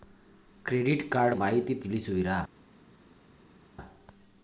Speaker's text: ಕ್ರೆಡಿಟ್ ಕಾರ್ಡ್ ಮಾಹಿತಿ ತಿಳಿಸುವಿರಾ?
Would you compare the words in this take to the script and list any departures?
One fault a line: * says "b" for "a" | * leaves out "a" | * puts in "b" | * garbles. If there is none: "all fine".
all fine